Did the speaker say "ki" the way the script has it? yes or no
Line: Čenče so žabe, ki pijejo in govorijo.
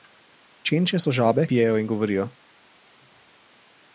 no